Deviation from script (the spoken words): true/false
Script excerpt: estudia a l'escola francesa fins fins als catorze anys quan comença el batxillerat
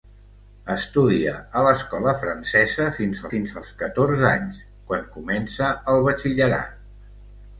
false